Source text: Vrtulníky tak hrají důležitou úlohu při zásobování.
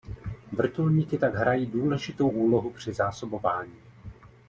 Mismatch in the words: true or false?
false